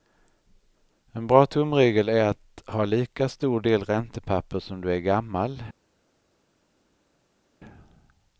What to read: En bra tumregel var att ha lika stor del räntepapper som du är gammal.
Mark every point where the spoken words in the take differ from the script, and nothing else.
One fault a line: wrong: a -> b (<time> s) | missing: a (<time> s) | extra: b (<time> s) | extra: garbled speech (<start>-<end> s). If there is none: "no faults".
wrong: var -> är (2.1 s)